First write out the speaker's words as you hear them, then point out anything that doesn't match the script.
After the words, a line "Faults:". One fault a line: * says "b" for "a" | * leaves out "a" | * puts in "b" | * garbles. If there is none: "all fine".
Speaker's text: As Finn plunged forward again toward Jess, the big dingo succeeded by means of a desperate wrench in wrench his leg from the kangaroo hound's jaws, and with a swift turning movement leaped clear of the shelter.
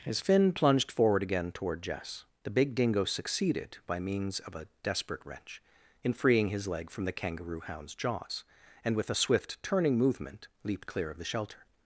As Finn plunged forward again toward Jess, the big dingo succeeded by means of a desperate wrench in freeing his leg from the kangaroo hound's jaws, and with a swift turning movement leaped clear of the shelter.
Faults:
* says "freeing" for "wrench"